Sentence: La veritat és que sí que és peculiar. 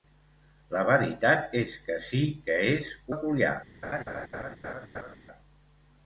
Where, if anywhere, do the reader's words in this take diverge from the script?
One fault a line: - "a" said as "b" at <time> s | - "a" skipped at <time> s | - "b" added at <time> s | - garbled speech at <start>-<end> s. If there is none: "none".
none